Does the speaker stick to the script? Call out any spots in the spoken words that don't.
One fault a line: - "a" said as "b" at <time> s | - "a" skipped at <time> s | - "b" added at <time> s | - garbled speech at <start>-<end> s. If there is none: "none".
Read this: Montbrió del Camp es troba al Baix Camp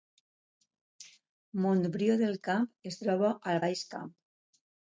none